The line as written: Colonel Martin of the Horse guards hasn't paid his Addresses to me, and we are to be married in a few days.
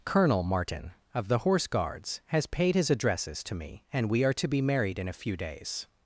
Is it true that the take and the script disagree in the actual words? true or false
true